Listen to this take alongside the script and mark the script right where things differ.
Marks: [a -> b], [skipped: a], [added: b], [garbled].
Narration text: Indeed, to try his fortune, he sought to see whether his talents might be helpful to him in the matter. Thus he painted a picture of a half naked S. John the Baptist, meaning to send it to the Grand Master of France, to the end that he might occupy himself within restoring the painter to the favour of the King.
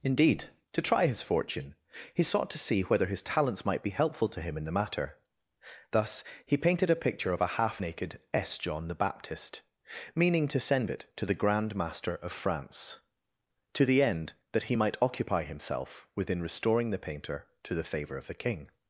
Indeed, to try his fortune, he sought to see whether his talents might be helpful to him in the matter. Thus he painted a picture of a half naked S. John the Baptist, meaning to send it to the Grand Master of France, to the end that he might occupy himself within restoring the painter to the favour of the King.